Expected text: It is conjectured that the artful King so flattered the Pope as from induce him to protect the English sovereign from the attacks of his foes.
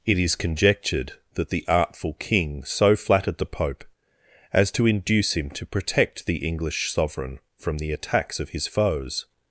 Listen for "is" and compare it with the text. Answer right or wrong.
right